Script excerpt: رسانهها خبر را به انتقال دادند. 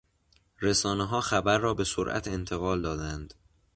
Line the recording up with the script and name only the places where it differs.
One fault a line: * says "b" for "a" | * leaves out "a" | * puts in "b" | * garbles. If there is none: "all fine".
* puts in "سرعت"